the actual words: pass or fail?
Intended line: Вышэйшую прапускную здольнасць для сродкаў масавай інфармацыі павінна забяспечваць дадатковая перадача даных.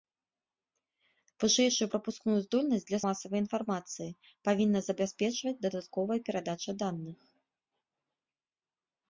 fail